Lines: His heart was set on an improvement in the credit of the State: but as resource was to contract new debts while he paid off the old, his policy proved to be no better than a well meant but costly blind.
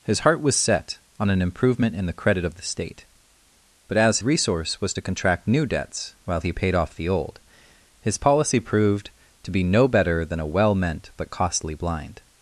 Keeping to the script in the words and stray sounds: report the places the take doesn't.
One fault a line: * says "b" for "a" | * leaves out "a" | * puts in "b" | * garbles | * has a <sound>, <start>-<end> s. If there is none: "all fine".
all fine